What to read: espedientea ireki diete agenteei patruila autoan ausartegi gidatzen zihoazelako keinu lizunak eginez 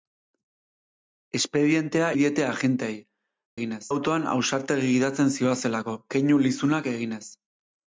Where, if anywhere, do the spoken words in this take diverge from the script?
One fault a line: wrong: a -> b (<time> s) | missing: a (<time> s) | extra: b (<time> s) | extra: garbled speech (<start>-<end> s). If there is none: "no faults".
missing: ireki (2.1 s)
wrong: patruila -> eginez (3.6 s)